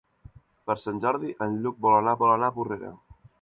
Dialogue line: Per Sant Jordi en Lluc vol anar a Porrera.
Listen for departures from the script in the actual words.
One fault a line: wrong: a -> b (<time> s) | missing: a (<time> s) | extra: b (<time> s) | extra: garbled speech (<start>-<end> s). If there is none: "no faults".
extra: vol anar (2.2 s)